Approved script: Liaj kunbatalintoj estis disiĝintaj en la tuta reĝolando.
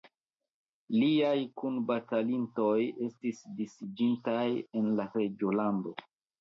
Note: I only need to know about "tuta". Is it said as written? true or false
false